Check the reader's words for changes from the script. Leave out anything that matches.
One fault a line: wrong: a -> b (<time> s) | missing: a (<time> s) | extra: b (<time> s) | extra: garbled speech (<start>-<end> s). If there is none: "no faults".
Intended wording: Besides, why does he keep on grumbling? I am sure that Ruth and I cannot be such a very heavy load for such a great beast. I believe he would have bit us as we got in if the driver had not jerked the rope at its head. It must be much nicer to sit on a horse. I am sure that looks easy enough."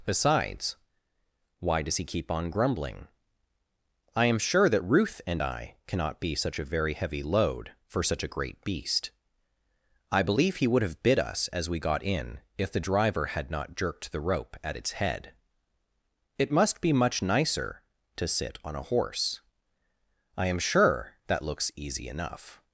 no faults